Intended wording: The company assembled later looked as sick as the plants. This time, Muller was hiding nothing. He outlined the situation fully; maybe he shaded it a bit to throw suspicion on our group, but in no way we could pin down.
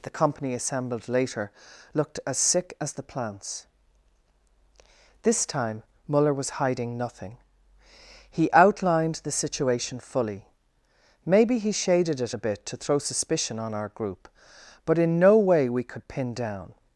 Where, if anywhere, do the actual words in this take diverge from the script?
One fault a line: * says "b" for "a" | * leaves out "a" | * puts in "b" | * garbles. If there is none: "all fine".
all fine